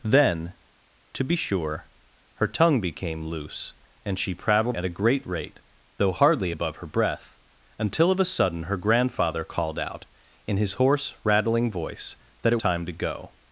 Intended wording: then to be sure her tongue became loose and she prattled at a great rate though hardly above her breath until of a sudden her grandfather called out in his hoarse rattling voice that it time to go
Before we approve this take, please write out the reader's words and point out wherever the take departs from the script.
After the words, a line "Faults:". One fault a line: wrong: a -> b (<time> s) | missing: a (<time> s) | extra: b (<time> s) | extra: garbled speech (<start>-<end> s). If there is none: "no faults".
then to be sure her tongue became loose and she prattled at a great rate though hardly above her breath until of a sudden her grandfather called out in his hoarse rattling voice that it time to go
Faults:
no faults